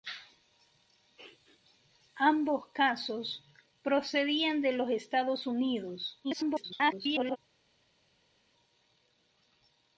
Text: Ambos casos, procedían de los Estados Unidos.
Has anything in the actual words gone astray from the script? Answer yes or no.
yes